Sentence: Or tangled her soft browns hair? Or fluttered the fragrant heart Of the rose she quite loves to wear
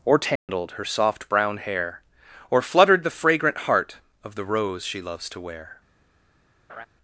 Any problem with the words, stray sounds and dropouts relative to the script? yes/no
yes